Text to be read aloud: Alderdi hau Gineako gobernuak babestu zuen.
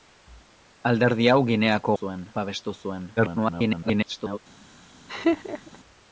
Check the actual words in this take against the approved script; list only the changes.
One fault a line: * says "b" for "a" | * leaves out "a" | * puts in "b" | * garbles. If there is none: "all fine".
* says "zuen" for "gobernuak"
* garbles